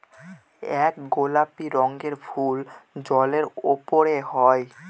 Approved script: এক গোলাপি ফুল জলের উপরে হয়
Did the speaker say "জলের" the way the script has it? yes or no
yes